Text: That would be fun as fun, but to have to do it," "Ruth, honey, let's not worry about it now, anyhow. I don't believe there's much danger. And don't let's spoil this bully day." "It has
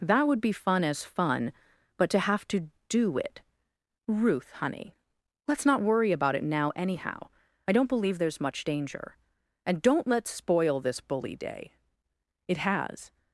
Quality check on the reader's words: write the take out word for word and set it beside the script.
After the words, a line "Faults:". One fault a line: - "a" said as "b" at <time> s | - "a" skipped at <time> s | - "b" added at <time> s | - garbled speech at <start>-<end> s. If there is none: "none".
That would be fun as fun, but to have to do it," "Ruth, honey, let's not worry about it now, anyhow. I don't believe there's much danger. And don't let's spoil this bully day." "It has
Faults:
none